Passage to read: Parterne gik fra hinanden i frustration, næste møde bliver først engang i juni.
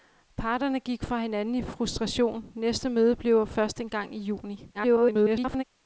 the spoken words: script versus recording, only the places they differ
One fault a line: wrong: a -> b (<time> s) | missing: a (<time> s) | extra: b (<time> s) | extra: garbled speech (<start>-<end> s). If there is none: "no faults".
extra: garbled speech (4.7-5.6 s)